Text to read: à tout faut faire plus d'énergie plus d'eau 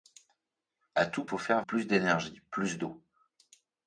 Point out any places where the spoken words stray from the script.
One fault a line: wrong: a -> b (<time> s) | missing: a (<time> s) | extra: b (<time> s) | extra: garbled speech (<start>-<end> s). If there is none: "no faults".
no faults